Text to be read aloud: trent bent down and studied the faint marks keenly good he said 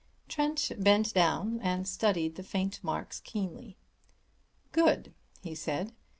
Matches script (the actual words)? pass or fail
pass